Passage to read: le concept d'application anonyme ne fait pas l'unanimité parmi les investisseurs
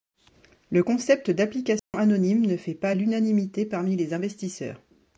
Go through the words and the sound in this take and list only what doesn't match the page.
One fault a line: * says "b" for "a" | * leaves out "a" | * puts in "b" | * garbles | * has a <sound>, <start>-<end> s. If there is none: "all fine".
* has a dropout, 1.8-1.9 s